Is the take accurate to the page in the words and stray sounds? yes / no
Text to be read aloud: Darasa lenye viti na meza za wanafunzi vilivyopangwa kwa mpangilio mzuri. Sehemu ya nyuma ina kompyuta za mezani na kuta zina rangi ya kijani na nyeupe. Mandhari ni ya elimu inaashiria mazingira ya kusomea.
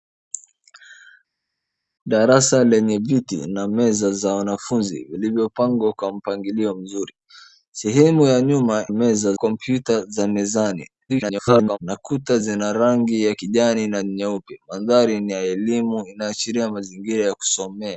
no